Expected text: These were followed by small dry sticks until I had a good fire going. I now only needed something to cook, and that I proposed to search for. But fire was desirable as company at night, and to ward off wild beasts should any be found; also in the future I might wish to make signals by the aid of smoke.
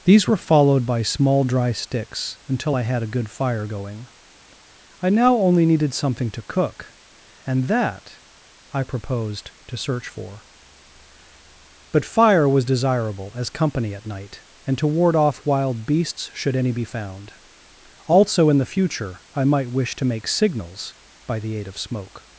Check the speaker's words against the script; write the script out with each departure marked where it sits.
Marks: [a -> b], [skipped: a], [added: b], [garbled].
These were followed by small dry sticks until I had a good fire going. I now only needed something to cook, and that I proposed to search for. But fire was desirable as company at night, and to ward off wild beasts should any be found; also in the future I might wish to make signals by the aid of smoke.